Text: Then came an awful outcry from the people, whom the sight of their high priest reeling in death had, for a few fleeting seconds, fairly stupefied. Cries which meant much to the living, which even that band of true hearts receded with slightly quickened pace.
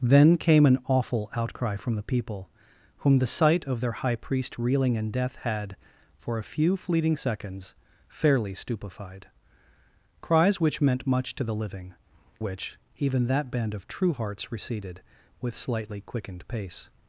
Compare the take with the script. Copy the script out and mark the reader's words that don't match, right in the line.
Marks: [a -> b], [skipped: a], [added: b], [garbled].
Then came an awful outcry from the people, whom the sight of their high priest reeling in death had, for a few fleeting seconds, fairly stupefied. Cries which meant much to the living, which even that band of true hearts receded with slightly quickened pace.